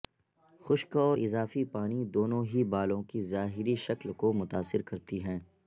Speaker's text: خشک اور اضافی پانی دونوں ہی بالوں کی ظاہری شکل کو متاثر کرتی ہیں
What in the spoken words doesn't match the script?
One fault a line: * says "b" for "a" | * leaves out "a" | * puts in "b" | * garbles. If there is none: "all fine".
all fine